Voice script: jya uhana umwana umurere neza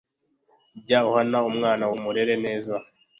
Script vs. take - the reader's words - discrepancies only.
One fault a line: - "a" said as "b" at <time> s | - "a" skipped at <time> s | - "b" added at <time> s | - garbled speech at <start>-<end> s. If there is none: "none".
none